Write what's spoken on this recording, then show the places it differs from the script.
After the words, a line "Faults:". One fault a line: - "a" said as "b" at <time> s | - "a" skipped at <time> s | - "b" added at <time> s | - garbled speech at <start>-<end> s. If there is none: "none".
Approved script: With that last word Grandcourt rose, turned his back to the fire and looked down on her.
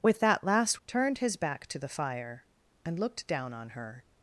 With that last turned his back to the fire and looked down on her.
Faults:
- "word Grandcourt rose" skipped at 0.8 s